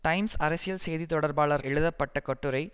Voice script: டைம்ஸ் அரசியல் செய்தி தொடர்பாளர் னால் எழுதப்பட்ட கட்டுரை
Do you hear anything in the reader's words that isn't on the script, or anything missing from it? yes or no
yes